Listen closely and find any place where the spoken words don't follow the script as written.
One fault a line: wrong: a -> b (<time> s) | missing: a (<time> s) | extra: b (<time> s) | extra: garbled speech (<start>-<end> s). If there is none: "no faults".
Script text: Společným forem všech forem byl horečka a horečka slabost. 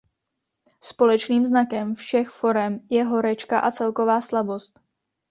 wrong: forem -> znakem (1.5 s)
wrong: byl -> je (2.9 s)
wrong: horečka -> celková (3.7 s)